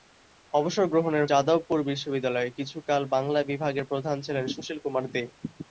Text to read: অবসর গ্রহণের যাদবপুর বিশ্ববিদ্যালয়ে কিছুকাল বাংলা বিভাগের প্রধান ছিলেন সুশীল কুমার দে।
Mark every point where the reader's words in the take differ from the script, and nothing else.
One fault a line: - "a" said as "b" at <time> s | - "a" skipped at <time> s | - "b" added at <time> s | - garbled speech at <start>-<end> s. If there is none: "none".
none